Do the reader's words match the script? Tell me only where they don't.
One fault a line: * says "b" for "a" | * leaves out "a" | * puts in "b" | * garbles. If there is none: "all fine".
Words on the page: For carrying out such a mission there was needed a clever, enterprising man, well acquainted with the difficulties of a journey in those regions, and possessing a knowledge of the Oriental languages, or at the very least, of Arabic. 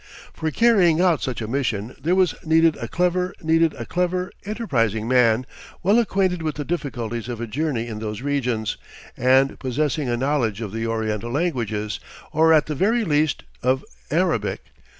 * puts in "needed a clever"